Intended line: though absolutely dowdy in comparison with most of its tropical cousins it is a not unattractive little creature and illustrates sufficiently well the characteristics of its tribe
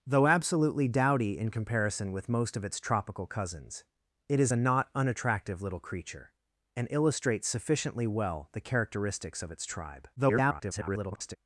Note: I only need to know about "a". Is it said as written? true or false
true